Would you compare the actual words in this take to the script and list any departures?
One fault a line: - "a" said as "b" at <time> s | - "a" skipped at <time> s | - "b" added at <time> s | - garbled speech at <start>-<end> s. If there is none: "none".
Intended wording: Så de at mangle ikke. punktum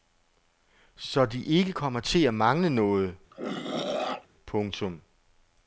- "ikke kommer til" added at 1.4 s
- "ikke" said as "noget" at 2.7 s